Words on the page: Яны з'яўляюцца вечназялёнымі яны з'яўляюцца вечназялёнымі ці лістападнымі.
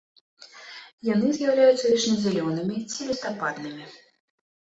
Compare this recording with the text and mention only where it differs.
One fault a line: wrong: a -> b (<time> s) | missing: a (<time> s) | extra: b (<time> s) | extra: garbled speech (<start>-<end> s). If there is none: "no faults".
missing: яны з'яўляюцца вечназялёнымі (2.8 s)